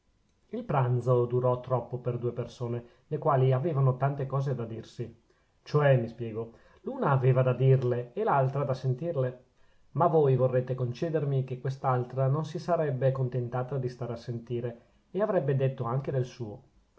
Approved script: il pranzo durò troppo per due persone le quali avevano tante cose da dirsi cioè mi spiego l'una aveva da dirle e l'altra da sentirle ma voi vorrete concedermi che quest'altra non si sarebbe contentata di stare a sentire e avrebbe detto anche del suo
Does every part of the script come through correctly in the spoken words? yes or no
yes